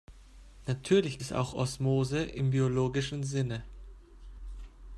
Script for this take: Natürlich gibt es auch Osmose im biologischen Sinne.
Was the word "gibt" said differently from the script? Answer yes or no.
yes